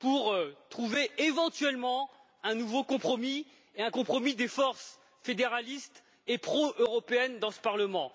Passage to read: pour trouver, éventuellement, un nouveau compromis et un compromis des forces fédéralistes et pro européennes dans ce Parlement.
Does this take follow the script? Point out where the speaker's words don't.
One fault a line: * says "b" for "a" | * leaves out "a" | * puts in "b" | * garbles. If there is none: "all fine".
all fine